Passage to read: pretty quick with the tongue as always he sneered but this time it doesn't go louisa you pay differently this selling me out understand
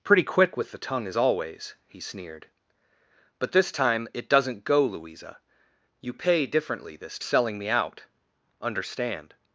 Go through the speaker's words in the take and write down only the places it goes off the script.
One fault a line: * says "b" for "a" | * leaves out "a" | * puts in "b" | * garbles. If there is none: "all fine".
all fine